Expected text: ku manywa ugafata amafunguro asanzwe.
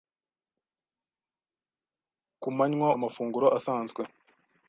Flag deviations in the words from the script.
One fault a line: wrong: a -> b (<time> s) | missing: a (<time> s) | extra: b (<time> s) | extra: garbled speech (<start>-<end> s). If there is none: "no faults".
missing: ugafata (2.9 s)